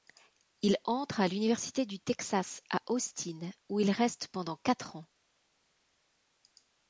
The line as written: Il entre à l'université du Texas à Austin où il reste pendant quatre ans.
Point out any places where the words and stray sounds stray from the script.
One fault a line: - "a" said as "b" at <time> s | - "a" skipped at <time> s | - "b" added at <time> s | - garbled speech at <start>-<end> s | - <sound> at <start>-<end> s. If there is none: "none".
none